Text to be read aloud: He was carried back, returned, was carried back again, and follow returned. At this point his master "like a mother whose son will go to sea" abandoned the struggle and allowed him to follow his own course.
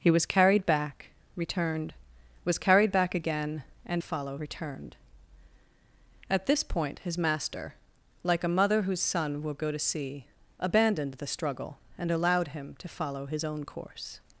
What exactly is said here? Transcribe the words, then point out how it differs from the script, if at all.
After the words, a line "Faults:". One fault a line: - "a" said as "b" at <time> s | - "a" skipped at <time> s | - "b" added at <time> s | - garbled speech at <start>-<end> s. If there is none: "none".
He was carried back, returned, was carried back again, and follow returned. At this point his master "like a mother whose son will go to sea" abandoned the struggle and allowed him to follow his own course.
Faults:
none